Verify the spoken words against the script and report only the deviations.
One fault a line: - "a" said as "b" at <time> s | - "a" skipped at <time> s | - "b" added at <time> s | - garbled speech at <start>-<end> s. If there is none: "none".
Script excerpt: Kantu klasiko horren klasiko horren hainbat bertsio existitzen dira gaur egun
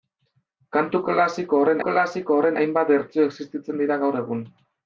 none